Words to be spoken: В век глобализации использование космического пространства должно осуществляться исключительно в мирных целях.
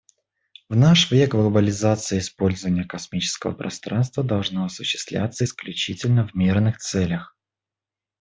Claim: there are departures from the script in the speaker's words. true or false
true